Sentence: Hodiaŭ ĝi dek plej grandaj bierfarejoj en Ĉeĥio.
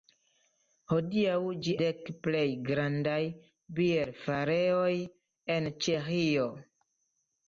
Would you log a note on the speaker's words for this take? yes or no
no